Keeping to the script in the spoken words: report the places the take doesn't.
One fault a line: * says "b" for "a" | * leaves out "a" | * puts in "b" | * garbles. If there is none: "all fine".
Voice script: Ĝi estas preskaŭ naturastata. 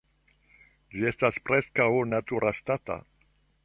all fine